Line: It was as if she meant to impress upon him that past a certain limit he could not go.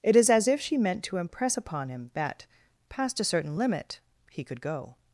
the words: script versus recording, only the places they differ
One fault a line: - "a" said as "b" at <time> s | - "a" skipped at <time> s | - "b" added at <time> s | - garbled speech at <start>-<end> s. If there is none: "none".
- "was" said as "is" at 0.1 s
- "not" skipped at 4.6 s